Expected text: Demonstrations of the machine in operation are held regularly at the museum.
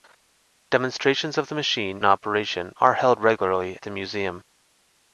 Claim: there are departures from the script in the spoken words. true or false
true